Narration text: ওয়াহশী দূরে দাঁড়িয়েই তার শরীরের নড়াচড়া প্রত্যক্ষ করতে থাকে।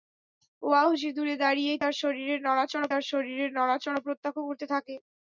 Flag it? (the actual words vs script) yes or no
yes